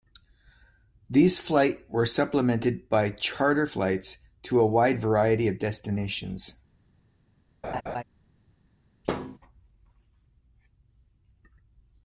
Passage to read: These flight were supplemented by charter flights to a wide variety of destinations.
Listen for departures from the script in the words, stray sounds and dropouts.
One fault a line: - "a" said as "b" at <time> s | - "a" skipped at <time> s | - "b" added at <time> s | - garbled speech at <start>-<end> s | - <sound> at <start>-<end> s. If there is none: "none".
- laugh at 7.6-8.0 s
- thud at 9.0-9.4 s